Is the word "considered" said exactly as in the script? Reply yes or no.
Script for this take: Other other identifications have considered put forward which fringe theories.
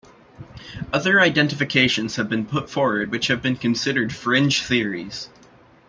no